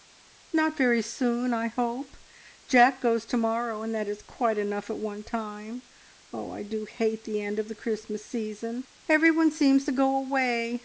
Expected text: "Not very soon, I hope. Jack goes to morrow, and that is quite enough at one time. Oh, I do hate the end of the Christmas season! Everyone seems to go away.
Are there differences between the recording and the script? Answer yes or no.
no